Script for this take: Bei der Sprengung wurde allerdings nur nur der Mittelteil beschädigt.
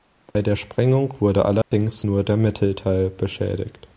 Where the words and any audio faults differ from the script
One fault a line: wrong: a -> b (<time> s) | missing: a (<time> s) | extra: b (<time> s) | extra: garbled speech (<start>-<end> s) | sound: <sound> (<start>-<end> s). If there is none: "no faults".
sound: dropout (0.3-0.3 s)
sound: dropout (1.6-1.7 s)
missing: nur (2.2 s)